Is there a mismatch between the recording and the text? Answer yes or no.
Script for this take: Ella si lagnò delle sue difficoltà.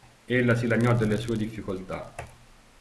no